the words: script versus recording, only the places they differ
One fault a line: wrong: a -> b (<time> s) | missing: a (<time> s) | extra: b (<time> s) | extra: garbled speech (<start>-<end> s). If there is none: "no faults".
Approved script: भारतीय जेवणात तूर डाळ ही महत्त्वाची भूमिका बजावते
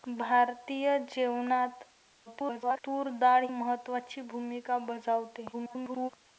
extra: garbled speech (2.3-2.8 s)
missing: ही (3.5 s)
extra: garbled speech (5.5-6.1 s)